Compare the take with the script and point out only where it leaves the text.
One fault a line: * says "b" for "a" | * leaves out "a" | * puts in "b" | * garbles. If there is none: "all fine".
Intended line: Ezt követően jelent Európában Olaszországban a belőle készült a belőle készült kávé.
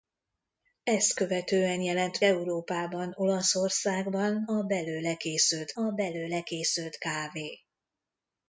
all fine